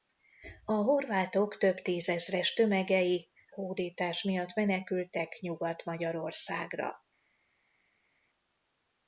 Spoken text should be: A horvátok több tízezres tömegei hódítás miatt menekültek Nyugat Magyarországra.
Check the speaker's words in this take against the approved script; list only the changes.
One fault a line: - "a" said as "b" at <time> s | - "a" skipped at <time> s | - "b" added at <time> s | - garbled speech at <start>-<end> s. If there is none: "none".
none